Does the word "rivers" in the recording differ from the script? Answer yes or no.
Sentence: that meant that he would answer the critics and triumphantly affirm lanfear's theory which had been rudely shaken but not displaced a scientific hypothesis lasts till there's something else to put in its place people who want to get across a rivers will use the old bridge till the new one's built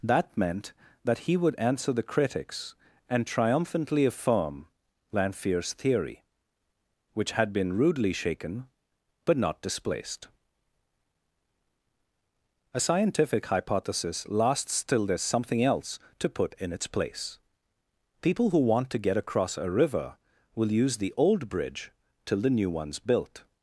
yes